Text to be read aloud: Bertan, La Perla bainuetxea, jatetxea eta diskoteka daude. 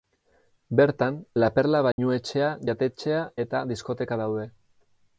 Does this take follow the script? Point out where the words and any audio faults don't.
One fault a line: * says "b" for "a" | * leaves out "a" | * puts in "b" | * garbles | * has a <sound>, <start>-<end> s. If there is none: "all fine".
* has a dropout, 1.9-2.0 s